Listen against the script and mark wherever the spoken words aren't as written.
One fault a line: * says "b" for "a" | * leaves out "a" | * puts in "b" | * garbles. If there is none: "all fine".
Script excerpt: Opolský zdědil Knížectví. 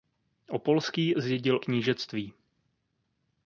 all fine